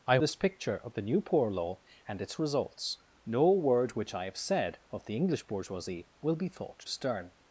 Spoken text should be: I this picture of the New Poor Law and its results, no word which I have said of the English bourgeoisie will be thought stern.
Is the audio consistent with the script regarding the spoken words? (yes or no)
yes